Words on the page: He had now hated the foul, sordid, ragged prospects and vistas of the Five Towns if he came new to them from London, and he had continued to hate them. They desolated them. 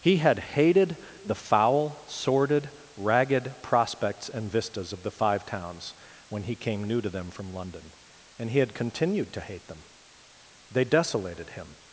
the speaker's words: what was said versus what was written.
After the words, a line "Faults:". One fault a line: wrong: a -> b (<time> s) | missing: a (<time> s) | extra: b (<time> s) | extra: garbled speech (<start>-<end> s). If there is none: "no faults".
He had hated the foul, sordid, ragged prospects and vistas of the Five Towns when he came new to them from London, and he had continued to hate them. They desolated him.
Faults:
missing: now (0.4 s)
wrong: if -> when (6.3 s)
wrong: them -> him (11.5 s)